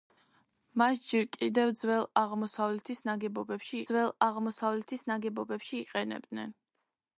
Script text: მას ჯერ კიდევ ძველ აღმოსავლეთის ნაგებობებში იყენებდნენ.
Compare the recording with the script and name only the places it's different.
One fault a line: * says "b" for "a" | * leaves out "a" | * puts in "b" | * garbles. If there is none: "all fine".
* puts in "ძველ აღმოსავლეთის ნაგებობებში"